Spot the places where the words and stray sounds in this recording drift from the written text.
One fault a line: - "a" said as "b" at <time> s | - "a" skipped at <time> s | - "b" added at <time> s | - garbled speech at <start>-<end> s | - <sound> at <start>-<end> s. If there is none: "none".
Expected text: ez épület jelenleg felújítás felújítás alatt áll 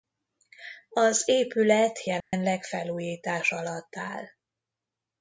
- "ez" said as "az" at 0.9 s
- dropout at 2.2-2.3 s
- "felújítás" skipped at 3.5 s